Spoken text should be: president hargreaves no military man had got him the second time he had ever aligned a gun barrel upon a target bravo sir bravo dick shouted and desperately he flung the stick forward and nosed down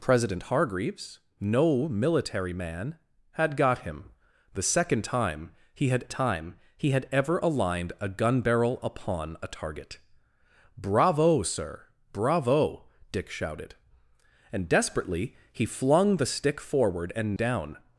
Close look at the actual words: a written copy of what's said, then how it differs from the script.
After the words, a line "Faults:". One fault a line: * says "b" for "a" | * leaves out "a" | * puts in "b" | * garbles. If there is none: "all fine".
president hargreaves no military man had got him the second time he had time he had ever aligned a gun barrel upon a target bravo sir bravo dick shouted and desperately he flung the stick forward and down
Faults:
* puts in "time he had"
* leaves out "nosed"